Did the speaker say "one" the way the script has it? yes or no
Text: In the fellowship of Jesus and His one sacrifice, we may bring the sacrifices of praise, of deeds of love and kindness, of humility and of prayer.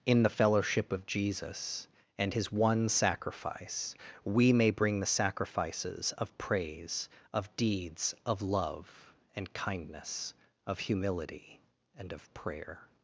yes